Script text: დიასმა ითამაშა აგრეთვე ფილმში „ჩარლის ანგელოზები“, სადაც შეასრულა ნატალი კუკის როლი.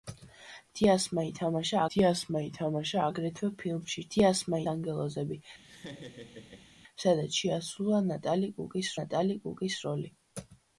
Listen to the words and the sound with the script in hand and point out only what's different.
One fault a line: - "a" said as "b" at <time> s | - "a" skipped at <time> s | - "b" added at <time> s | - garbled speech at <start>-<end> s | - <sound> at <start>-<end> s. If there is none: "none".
- "დიასმა ითამაშა" added at 1.9 s
- "ჩარლის" said as "დიასმა" at 4.1 s
- laugh at 5.6-6.7 s
- "ნატალი კუკის" added at 9.0 s